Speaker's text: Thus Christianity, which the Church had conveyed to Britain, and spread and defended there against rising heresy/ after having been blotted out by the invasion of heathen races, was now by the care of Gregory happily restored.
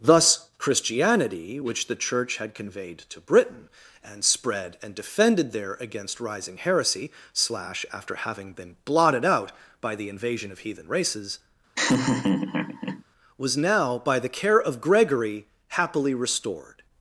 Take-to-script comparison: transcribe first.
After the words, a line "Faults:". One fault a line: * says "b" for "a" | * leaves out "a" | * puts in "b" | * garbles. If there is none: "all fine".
Thus Christianity, which the Church had conveyed to Britain, and spread and defended there against rising heresy/ slash after having been blotted out by the invasion of heathen races, was now by the care of Gregory happily restored.
Faults:
* puts in "slash"